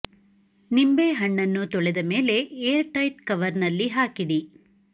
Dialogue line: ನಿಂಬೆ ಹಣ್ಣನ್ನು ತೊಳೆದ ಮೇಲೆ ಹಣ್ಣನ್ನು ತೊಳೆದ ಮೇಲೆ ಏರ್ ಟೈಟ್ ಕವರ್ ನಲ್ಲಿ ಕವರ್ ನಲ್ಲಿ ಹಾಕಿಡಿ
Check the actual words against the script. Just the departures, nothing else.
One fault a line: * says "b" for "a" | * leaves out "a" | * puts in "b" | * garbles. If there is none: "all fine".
* leaves out "ಹಣ್ಣನ್ನು ತೊಳೆದ ಮೇಲೆ"
* leaves out "ಕವರ್ ನಲ್ಲಿ"